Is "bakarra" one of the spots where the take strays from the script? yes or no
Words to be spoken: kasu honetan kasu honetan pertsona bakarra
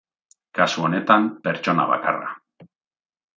no